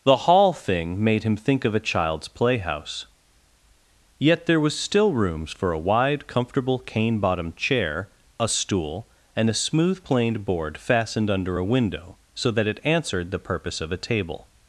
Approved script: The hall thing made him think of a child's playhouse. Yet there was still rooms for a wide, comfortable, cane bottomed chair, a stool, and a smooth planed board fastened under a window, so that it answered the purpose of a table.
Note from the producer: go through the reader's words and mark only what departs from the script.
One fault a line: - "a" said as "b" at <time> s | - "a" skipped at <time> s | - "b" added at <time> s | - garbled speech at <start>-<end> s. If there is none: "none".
none